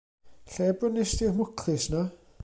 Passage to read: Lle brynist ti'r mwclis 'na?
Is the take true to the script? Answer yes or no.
yes